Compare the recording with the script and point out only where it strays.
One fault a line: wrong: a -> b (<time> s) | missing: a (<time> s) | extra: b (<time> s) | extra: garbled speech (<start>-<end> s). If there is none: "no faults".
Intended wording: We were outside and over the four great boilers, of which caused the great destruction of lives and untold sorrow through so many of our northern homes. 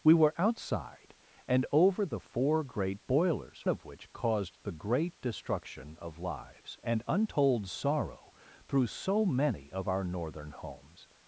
no faults